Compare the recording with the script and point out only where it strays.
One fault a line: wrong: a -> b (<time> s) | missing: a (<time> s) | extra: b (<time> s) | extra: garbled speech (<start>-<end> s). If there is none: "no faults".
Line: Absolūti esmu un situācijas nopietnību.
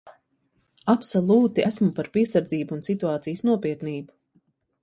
extra: par piesardzību (2.0 s)